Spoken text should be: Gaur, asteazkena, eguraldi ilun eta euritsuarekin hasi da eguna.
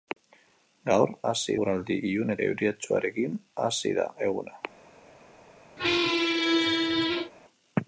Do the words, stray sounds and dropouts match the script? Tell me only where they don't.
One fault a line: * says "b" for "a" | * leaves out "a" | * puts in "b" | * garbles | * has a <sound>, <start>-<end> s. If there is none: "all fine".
* says "hasi" for "asteazkena"
* leaves out "eta"
* has a squeak, 5.8-7.3 s